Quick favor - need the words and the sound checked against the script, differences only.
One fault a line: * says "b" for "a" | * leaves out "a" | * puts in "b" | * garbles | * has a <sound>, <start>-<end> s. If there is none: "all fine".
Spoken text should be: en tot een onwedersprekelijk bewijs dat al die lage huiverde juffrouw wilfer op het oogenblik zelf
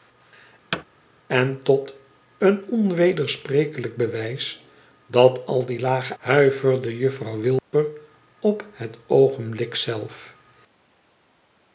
* has a thud, 0.7-0.8 s
* has a dropout, 7.6-7.7 s